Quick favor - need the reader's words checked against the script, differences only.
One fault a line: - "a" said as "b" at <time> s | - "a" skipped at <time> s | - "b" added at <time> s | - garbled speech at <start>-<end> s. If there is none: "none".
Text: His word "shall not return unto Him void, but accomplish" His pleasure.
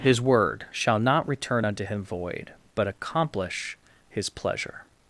none